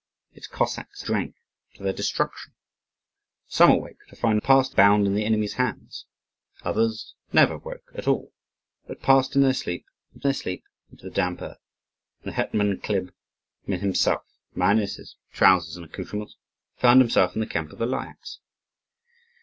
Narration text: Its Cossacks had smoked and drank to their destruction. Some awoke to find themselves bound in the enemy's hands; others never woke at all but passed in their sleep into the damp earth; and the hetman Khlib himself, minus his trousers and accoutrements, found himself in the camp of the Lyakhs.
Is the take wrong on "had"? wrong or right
wrong